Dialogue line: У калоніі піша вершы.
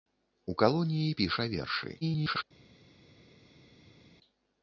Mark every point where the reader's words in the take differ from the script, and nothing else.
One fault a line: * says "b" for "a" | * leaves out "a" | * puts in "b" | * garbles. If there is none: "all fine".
* garbles